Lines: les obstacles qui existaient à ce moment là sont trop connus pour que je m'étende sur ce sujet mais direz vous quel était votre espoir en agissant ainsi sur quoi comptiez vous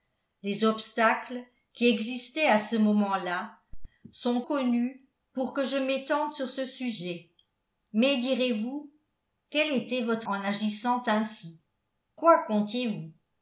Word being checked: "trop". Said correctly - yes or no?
no